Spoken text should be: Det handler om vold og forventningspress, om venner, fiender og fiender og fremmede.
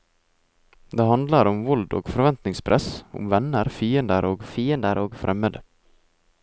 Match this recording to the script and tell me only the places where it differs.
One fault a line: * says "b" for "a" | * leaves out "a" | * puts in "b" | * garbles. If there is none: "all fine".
all fine